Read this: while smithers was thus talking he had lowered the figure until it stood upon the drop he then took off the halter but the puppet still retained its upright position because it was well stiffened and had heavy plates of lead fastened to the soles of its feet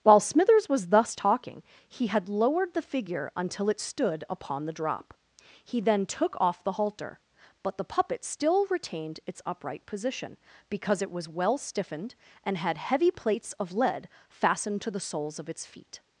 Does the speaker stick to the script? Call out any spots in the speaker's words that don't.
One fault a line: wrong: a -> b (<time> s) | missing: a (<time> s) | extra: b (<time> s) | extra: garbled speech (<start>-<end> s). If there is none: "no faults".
no faults